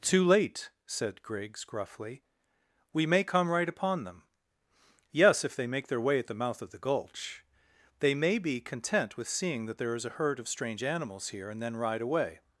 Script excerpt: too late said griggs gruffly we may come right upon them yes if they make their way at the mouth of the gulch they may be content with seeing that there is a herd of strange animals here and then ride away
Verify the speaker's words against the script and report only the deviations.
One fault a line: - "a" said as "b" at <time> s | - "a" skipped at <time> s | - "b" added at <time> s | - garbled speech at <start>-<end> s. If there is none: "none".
none